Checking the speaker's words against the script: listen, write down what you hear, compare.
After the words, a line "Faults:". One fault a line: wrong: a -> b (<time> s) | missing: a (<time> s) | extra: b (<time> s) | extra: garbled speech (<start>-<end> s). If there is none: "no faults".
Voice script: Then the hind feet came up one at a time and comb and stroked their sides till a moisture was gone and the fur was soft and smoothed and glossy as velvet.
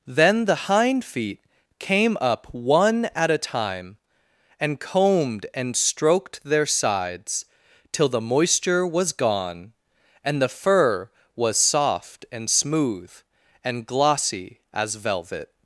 Then the hind feet came up one at a time and combed and stroked their sides till the moisture was gone and the fur was soft and smooth and glossy as velvet.
Faults:
wrong: comb -> combed (4.8 s)
wrong: a -> the (8.1 s)
wrong: smoothed -> smooth (12.5 s)